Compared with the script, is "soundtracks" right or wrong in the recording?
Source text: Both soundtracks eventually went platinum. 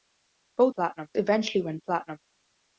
wrong